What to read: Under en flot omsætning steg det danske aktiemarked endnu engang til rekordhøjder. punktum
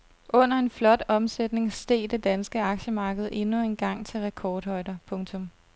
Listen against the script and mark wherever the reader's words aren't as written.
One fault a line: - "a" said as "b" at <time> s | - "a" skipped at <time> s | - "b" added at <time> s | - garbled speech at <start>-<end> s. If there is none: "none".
none